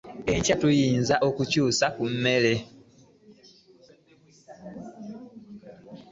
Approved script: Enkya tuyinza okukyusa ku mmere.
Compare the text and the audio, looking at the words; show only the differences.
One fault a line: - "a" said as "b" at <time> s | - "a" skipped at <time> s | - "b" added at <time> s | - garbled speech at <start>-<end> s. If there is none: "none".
none